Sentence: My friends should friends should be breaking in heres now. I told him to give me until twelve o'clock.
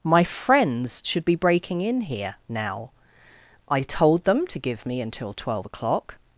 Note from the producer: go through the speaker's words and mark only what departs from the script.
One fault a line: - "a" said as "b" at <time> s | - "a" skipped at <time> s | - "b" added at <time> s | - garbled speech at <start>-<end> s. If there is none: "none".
- "friends should" skipped at 1.2 s
- "heres" said as "here" at 2.0 s
- "him" said as "them" at 4.2 s